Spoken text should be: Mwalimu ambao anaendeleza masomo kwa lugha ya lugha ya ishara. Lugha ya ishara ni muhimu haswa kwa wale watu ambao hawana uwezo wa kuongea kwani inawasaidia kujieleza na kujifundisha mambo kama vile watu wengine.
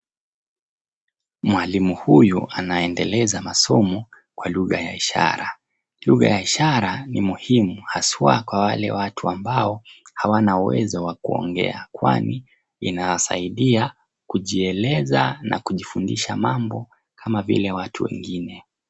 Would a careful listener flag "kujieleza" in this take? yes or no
no